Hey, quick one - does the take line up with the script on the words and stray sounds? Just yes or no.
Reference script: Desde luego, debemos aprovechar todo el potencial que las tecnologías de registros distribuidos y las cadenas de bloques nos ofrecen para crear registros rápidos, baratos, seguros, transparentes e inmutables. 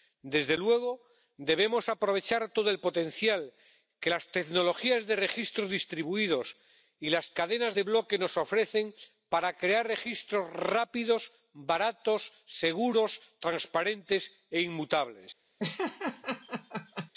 no